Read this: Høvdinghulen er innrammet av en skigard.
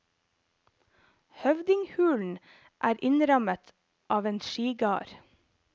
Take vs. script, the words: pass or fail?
pass